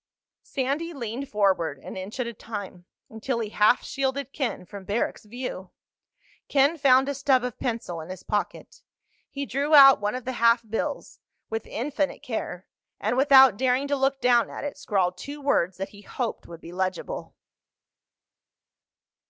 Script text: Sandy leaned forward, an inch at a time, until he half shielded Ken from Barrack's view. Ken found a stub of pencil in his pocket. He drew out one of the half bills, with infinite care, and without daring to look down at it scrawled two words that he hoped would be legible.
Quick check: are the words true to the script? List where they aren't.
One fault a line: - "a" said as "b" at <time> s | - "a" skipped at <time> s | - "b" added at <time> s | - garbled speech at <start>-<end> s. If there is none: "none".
none